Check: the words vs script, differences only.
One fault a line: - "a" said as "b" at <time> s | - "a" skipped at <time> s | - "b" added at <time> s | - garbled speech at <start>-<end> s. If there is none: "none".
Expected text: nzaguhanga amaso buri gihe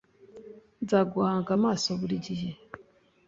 none